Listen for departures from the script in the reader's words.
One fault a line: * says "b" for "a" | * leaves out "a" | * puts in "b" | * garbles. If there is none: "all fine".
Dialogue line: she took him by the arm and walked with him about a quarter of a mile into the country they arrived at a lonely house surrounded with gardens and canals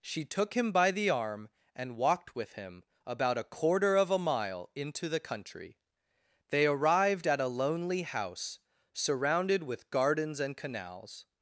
all fine